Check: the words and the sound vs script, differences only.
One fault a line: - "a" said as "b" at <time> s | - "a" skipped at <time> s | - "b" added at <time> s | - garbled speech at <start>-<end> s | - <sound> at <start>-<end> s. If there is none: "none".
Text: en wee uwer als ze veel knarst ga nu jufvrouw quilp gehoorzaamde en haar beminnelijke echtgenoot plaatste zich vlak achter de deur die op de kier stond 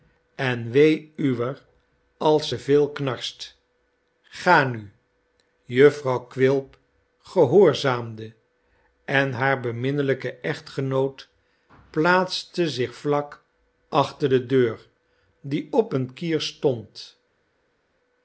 - "de" said as "een" at 15.9 s